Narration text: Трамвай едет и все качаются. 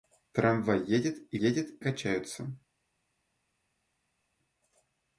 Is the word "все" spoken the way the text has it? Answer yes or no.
no